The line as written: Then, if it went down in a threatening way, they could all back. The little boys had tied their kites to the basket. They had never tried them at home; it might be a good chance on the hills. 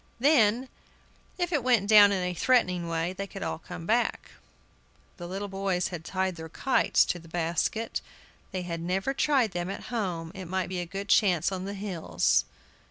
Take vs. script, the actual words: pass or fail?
fail